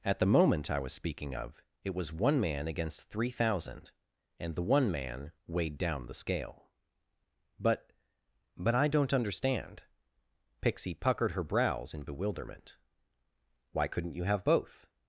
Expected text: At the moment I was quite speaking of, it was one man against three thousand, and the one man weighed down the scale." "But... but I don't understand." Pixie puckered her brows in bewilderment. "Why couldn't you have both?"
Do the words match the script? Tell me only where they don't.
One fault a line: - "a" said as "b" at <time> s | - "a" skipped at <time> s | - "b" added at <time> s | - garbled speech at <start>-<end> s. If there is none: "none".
- "quite" skipped at 0.9 s